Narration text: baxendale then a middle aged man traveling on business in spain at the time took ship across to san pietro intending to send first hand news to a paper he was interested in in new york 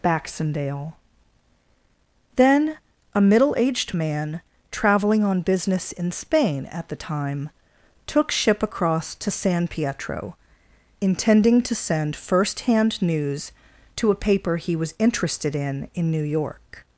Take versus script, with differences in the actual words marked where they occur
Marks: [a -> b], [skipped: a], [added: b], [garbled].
baxendale then a middle aged man traveling on business in spain at the time took ship across to san pietro intending to send first hand news to a paper he was interested in in new york